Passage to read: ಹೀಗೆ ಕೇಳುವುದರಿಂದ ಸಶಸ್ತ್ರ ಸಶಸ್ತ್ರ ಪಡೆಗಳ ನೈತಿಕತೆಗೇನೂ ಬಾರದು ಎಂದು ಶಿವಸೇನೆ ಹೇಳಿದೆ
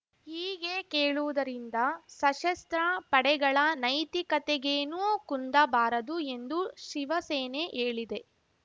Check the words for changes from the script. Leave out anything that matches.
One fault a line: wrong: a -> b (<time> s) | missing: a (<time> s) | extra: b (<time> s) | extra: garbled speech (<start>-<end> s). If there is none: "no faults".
missing: ಸಶಸ್ತ್ರ (2.8 s)
extra: ಕುಂದ (5.2 s)